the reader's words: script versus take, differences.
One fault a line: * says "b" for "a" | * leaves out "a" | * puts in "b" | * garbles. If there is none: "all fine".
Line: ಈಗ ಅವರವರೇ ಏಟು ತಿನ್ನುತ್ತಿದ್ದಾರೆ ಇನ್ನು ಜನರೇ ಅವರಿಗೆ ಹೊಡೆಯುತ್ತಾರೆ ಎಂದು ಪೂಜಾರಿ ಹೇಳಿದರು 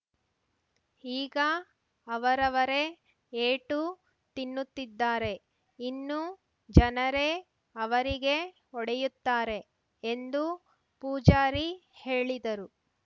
all fine